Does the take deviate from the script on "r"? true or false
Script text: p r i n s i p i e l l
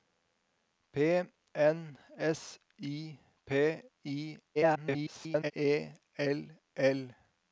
true